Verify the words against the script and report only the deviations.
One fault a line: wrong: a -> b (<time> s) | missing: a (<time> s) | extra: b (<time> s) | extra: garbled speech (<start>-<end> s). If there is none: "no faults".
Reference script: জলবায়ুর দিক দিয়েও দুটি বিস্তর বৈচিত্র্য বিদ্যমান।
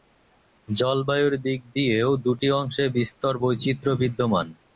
extra: অংশে (2.6 s)